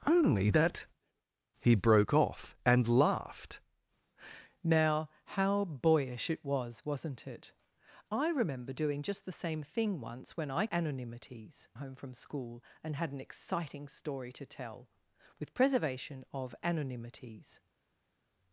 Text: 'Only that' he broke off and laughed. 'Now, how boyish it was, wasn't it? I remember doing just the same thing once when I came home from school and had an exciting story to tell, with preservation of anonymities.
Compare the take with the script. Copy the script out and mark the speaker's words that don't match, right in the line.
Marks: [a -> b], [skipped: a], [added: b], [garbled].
'Only that' he broke off and laughed. 'Now, how boyish it was, wasn't it? I remember doing just the same thing once when I [came -> anonymities] home from school and had an exciting story to tell, with preservation of anonymities.